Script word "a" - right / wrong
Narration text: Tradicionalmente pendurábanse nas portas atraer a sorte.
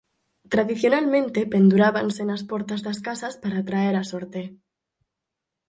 right